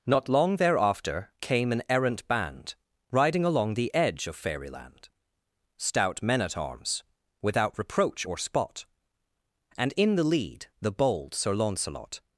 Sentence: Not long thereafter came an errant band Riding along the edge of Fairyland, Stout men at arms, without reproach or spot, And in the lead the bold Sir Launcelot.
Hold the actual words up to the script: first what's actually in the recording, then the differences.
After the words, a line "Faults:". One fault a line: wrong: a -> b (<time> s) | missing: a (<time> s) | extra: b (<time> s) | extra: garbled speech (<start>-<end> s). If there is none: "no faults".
Not long thereafter came an errant band Riding along the edge of Fairyland, Stout men at arms, without reproach or spot, And in the lead the bold Sir Launcelot.
Faults:
no faults